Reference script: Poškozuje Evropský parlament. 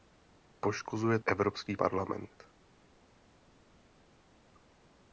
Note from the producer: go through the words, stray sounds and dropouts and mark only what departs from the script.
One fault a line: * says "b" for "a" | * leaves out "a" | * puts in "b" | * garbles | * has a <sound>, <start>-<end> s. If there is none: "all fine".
all fine